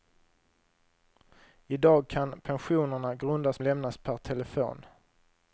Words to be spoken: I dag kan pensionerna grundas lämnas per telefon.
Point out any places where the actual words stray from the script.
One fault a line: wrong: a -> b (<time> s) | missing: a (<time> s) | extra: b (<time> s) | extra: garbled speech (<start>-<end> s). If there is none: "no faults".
no faults